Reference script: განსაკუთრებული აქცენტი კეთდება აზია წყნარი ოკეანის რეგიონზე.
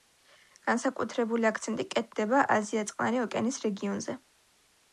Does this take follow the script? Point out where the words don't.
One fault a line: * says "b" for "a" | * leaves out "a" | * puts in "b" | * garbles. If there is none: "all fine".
all fine